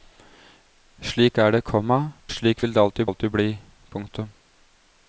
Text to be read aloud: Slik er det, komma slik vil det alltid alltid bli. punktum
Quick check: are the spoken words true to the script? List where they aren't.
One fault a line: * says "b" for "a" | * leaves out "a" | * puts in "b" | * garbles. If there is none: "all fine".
all fine